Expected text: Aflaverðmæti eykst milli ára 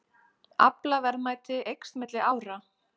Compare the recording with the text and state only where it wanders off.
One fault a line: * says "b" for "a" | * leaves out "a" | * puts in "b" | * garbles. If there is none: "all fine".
all fine